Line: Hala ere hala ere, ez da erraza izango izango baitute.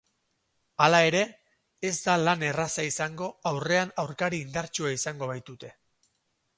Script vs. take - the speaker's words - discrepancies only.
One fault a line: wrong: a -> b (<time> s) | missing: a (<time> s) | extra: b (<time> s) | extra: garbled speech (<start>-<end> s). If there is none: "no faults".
missing: hala ere (1.2 s)
extra: lan (2.2 s)
extra: aurrean aurkari indartsua (3.5 s)